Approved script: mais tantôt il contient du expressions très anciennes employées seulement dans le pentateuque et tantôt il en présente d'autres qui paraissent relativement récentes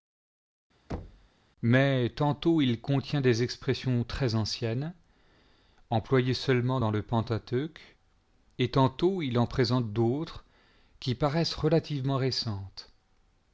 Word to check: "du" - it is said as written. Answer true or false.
false